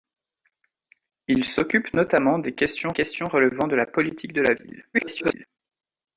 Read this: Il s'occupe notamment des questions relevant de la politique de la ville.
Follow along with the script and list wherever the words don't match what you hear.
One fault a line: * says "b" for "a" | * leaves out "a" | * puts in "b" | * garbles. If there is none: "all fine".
* puts in "questions"
* garbles